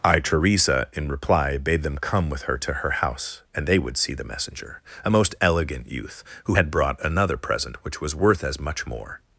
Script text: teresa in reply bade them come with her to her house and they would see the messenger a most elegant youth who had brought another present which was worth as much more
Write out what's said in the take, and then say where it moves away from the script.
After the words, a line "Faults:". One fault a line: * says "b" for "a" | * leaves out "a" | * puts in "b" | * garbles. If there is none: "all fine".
i teresa in reply bade them come with her to her house and they would see the messenger a most elegant youth who had brought another present which was worth as much more
Faults:
* puts in "i"